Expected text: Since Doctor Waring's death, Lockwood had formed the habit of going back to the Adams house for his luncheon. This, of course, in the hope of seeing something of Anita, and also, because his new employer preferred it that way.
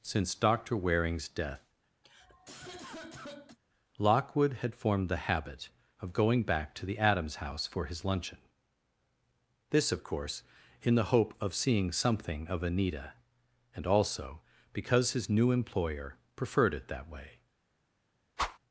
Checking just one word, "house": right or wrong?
right